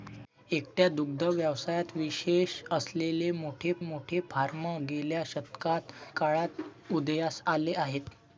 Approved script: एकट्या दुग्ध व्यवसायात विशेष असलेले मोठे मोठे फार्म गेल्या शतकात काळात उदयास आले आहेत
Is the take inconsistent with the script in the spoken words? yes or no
no